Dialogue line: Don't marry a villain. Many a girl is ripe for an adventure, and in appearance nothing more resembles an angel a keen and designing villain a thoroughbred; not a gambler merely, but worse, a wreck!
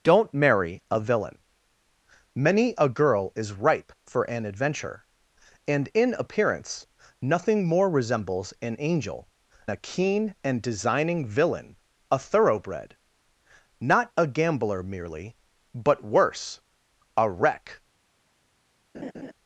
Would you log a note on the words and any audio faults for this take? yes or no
yes